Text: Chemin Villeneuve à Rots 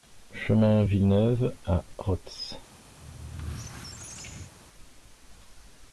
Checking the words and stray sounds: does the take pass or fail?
fail